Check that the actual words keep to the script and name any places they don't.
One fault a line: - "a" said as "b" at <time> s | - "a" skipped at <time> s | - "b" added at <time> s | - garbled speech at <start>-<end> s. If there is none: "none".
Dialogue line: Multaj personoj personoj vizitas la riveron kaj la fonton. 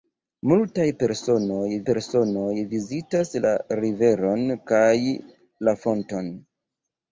none